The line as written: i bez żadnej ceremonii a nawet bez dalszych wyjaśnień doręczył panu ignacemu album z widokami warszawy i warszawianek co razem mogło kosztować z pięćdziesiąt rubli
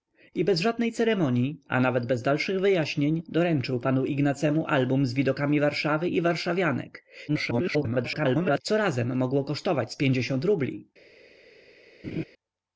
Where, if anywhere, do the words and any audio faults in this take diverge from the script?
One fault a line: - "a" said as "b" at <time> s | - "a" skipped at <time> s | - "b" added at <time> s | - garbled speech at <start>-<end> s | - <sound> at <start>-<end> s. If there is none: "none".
- garbled speech at 7.3-8.6 s
- laugh at 12.0-12.2 s